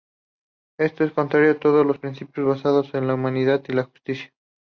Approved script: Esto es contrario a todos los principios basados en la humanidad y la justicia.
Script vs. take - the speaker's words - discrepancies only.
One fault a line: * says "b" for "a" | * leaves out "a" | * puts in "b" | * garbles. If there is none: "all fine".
all fine